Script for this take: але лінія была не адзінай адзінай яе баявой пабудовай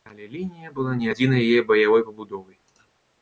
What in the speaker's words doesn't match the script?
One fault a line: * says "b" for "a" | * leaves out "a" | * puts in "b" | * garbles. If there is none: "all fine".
* leaves out "адзінай"